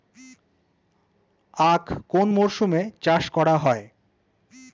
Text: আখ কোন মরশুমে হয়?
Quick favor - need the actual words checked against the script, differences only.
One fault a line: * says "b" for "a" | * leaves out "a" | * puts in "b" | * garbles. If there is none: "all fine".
* puts in "চাষ করা"